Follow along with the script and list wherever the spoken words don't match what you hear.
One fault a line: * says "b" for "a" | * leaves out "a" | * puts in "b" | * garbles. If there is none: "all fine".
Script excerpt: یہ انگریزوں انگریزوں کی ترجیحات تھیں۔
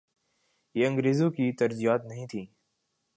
* leaves out "انگریزوں"
* puts in "نہیں"